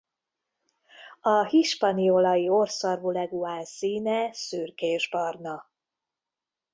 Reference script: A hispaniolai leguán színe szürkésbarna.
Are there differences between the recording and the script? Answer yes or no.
yes